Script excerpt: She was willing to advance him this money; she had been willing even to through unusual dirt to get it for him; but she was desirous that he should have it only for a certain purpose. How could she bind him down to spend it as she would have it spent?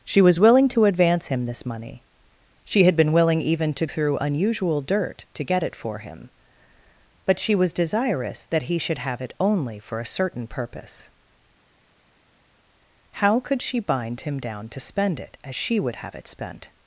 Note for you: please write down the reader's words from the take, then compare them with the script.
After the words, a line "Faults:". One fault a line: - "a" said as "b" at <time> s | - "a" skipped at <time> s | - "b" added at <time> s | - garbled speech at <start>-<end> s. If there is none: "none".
She was willing to advance him this money; she had been willing even to through unusual dirt to get it for him; but she was desirous that he should have it only for a certain purpose. How could she bind him down to spend it as she would have it spent?
Faults:
none